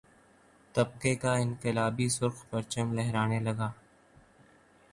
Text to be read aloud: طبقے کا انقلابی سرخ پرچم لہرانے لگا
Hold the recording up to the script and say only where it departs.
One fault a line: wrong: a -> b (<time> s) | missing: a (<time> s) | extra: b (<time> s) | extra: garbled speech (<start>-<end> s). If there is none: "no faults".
no faults